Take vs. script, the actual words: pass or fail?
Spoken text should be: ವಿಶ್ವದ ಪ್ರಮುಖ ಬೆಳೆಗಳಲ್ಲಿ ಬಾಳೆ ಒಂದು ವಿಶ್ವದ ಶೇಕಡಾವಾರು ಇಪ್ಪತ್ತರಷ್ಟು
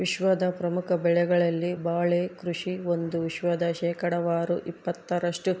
fail